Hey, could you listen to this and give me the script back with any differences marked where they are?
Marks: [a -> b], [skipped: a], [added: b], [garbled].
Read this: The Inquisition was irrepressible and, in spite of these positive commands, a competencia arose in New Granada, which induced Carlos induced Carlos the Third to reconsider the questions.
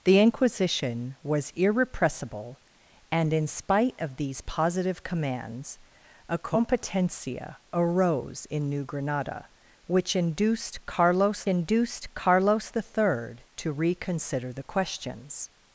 The Inquisition was irrepressible and, in spite of these positive commands, a competencia arose in New Granada, which induced Carlos induced Carlos the Third to reconsider the questions.